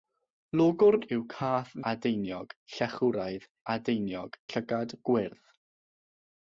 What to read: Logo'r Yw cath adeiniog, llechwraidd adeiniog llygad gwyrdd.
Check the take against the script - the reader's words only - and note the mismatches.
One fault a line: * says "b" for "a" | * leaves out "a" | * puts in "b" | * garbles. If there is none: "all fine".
all fine